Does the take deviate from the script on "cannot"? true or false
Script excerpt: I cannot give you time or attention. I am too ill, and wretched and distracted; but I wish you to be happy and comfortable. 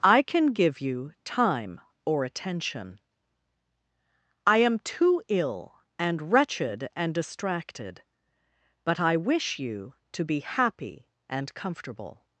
true